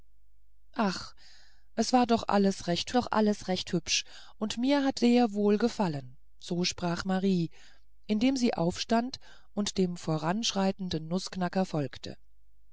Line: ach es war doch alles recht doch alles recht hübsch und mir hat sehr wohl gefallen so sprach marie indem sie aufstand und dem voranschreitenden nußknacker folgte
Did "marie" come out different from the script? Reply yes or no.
no